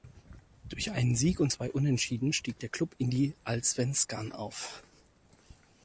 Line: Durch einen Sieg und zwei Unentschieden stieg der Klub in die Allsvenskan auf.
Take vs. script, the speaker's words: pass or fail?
pass